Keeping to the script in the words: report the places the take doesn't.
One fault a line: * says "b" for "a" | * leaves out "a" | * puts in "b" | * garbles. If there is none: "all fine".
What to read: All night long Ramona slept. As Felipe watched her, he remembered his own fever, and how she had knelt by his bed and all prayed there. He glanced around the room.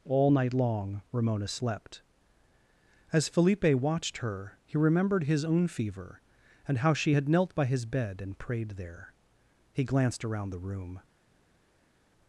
* leaves out "all"